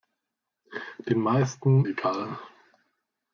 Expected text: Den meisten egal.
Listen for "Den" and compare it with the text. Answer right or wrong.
right